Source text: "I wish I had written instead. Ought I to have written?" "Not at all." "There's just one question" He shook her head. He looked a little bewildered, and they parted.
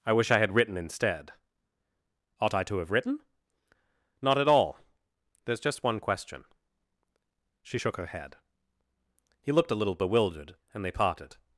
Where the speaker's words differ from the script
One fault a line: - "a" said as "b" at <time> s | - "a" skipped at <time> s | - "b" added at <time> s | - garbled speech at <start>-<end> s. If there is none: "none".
- "He" said as "She" at 7.6 s